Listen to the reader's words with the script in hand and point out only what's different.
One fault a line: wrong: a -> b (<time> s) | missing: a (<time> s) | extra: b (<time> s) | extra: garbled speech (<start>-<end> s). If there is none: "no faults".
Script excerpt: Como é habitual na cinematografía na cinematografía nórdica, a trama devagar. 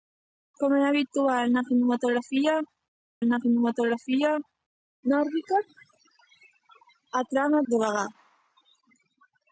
no faults